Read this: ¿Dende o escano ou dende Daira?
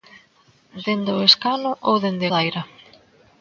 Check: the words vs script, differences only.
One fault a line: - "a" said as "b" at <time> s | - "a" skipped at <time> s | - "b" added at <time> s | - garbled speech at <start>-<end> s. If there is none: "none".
none